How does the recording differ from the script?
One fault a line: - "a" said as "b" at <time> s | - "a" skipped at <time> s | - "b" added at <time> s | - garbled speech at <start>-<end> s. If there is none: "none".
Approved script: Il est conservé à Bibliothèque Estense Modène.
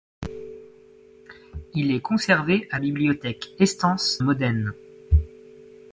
none